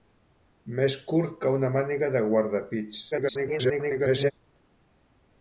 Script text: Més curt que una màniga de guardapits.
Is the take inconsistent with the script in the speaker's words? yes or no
yes